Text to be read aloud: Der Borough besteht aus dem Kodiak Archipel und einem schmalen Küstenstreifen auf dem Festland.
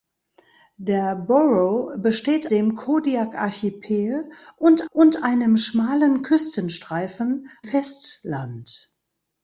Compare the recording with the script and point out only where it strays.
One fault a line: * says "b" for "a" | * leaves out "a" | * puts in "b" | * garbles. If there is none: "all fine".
* leaves out "aus"
* puts in "und"
* leaves out "auf dem"